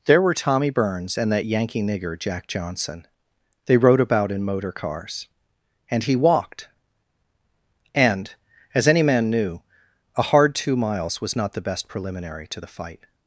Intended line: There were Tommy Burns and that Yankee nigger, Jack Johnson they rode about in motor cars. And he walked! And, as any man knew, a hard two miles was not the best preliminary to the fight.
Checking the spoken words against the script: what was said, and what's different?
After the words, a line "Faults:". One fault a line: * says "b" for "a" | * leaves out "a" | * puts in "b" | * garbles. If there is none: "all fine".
There were Tommy Burns and that Yankee nigger, Jack Johnson they rode about in motor cars. And he walked! And, as any man knew, a hard two miles was not the best preliminary to the fight.
Faults:
all fine